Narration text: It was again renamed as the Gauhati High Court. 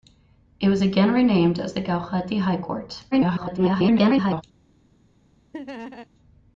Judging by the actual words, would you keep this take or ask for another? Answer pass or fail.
fail